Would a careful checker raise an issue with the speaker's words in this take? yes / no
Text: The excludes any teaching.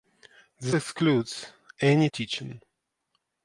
no